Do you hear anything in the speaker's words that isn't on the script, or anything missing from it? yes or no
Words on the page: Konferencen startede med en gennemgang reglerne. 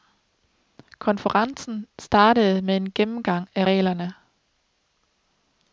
yes